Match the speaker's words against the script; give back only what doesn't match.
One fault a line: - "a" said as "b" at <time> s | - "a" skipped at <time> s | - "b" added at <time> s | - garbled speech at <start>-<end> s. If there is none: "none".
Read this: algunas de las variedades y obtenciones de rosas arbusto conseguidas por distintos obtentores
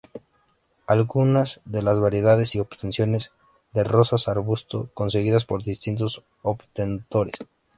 none